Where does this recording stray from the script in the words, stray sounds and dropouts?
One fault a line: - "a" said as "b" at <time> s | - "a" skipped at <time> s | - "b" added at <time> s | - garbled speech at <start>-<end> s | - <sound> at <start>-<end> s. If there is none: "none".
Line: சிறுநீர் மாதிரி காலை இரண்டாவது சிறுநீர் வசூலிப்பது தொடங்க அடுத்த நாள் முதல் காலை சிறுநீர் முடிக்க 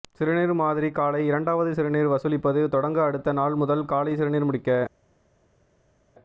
none